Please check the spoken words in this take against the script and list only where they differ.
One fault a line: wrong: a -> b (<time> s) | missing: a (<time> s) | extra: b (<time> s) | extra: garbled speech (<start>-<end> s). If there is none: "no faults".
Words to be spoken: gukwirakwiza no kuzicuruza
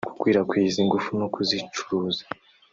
extra: ingufu (0.8 s)